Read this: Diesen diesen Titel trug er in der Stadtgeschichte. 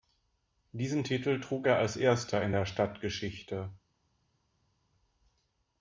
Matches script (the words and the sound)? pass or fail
fail